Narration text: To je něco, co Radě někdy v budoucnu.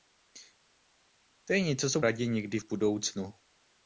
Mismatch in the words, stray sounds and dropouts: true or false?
false